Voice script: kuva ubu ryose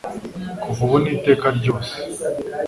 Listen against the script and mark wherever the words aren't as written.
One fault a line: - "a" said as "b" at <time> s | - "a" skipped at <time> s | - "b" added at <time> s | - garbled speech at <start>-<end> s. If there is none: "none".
- "n'iteka" added at 1.0 s